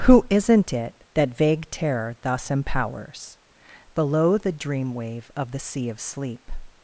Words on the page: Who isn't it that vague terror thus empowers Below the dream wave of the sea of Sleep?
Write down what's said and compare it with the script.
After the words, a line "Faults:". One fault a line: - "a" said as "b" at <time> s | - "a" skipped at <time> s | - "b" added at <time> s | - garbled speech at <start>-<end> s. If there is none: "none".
Who isn't it that vague terror thus empowers Below the dream wave of the sea of Sleep?
Faults:
none